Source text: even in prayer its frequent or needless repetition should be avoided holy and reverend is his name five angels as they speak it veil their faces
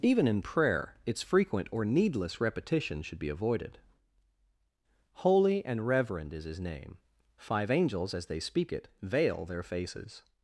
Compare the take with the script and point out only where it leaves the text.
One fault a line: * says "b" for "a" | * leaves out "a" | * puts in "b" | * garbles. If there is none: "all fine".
all fine